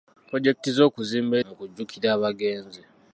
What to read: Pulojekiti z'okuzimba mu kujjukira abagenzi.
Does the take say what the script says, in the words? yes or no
yes